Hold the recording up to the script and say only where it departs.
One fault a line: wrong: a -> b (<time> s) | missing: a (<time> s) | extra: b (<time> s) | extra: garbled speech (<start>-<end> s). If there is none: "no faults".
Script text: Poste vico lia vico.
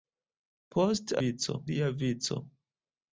no faults